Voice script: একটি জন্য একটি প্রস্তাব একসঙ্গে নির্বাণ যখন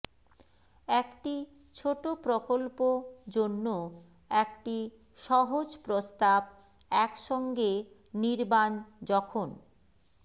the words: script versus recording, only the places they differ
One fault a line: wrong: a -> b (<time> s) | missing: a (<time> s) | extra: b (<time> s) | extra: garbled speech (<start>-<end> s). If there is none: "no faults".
extra: ছোট প্রকল্প (1.8 s)
extra: সহজ (5.2 s)